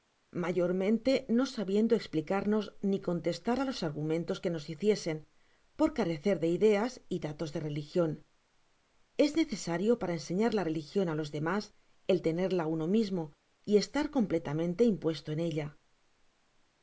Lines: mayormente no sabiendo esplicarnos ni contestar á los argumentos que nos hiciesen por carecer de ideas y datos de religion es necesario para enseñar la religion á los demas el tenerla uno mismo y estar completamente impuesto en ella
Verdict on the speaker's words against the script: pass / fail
pass